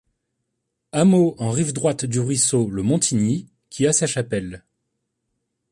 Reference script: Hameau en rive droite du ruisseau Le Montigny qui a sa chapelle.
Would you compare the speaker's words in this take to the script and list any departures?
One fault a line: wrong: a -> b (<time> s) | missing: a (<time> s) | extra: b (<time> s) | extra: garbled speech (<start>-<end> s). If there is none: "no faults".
no faults